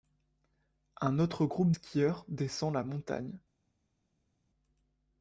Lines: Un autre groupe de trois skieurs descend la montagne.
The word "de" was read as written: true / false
false